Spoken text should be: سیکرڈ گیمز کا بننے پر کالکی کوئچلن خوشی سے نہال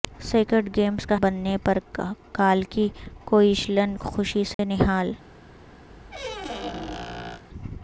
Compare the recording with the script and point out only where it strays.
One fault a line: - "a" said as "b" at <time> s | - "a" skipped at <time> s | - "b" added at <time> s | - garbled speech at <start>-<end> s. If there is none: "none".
none